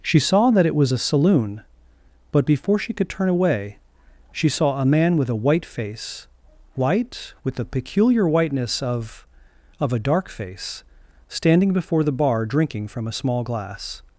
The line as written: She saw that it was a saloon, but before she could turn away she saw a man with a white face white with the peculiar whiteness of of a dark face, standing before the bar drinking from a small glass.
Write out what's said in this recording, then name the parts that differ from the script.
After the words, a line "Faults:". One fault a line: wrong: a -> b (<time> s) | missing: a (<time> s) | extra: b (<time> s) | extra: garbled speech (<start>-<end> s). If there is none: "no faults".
She saw that it was a saloon, but before she could turn away she saw a man with a white face white with the peculiar whiteness of of a dark face, standing before the bar drinking from a small glass.
Faults:
no faults